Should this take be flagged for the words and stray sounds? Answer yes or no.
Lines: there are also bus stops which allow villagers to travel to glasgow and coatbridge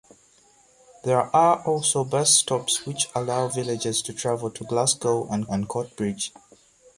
yes